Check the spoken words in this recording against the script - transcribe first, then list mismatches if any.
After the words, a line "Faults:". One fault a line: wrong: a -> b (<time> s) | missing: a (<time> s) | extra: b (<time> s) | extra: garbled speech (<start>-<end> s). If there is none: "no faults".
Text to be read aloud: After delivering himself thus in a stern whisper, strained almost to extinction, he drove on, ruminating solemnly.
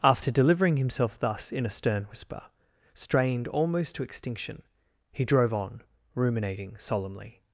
After delivering himself thus in a stern whisper, strained almost to extinction, he drove on, ruminating solemnly.
Faults:
no faults